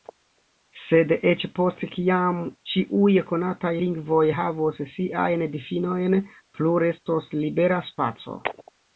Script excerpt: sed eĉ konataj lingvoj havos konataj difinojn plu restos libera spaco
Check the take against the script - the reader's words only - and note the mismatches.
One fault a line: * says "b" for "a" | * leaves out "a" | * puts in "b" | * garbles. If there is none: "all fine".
* puts in "post kiam ĉiuj"
* says "siajn" for "konataj"